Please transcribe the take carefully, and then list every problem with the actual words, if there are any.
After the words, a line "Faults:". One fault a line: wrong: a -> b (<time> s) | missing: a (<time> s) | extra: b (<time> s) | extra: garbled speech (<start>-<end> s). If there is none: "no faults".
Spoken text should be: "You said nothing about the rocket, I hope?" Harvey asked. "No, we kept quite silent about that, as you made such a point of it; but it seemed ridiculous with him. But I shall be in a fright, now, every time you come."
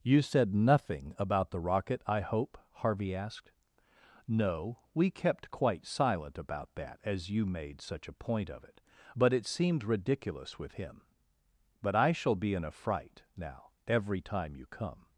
"You said nothing about the rocket, I hope?" Harvey asked. "No, we kept quite silent about that, as you made such a point of it; but it seemed ridiculous with him. But I shall be in a fright, now, every time you come."
Faults:
no faults